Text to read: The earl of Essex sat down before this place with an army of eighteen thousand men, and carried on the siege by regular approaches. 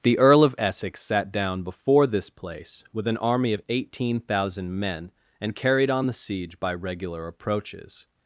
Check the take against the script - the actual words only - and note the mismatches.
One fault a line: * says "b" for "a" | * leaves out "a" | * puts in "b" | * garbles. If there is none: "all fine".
all fine